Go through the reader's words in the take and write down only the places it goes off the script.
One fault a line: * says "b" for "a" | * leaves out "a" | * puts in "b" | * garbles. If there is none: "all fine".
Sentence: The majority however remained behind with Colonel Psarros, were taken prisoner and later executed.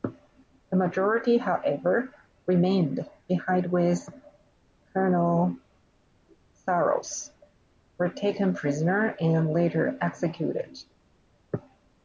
all fine